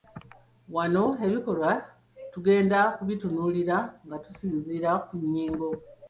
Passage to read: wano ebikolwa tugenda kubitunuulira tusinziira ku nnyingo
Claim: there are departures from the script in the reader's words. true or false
true